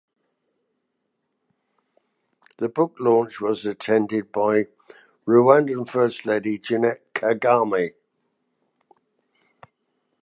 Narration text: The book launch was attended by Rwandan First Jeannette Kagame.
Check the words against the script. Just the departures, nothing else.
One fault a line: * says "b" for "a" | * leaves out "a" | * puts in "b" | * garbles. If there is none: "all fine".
* puts in "Lady"